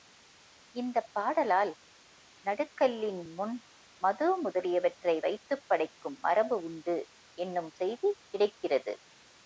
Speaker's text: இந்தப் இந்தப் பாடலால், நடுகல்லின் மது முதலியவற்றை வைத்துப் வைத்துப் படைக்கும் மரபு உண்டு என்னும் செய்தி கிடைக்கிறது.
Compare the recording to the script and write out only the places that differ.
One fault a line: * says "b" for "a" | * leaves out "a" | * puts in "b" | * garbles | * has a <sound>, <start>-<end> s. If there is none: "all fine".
* leaves out "இந்தப்"
* puts in "முன்"
* leaves out "வைத்துப்"